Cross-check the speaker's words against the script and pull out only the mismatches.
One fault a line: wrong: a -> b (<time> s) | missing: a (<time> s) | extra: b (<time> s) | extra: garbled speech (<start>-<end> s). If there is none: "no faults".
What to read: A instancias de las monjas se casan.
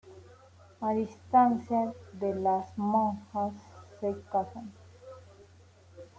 no faults